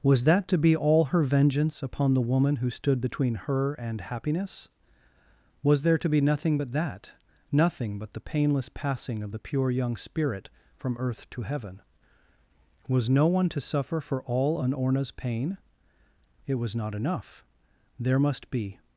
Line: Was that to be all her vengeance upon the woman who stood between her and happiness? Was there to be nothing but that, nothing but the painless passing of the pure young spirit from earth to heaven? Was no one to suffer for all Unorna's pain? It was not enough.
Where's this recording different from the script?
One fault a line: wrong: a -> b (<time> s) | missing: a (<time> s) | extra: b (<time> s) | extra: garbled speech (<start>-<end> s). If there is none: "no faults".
extra: There must be (18.0 s)